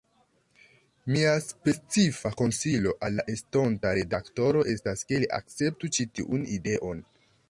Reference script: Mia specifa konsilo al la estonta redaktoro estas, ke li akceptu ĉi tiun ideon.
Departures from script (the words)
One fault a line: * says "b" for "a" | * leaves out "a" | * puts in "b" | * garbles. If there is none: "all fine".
all fine